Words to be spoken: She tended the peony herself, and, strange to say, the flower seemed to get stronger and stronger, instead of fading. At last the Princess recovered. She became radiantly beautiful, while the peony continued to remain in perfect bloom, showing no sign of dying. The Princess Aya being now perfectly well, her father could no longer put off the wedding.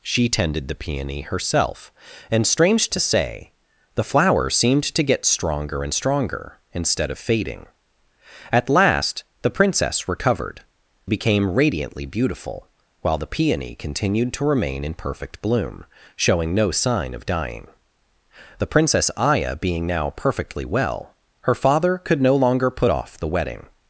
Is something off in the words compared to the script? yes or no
yes